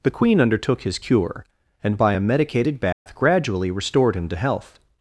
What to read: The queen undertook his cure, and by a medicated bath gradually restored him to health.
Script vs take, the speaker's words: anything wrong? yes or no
no